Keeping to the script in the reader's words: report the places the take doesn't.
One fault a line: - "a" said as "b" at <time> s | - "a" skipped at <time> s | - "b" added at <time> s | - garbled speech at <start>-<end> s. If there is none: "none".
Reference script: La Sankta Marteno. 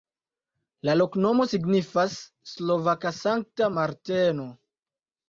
- "loknomo signifas slovaka" added at 1.0 s